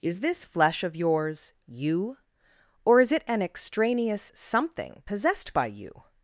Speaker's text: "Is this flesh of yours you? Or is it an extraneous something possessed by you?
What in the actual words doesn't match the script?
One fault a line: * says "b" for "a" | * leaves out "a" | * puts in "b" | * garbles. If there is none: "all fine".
all fine